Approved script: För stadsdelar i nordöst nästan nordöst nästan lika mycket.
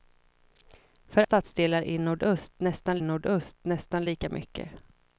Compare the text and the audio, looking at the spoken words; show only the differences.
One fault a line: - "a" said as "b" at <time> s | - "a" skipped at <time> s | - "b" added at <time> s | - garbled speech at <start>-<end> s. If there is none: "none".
none